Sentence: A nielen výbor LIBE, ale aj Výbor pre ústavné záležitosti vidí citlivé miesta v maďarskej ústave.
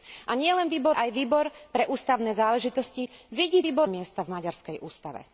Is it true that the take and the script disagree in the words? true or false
true